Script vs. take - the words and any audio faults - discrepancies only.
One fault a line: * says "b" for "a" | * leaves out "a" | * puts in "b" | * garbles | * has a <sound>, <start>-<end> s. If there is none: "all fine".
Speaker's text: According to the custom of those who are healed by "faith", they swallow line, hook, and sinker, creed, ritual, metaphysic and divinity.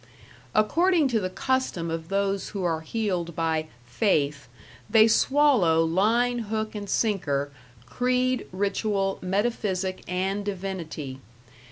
all fine